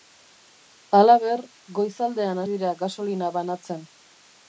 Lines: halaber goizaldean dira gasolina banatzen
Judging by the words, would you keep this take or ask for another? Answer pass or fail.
pass